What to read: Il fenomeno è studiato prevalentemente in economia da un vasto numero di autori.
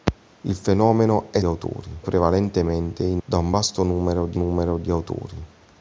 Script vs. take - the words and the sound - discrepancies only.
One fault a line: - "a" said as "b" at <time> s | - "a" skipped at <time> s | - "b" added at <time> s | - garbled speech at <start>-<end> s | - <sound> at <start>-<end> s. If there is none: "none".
- "studiato" said as "autori" at 1.4 s
- "economia" skipped at 3.2 s
- "numero di" added at 4.3 s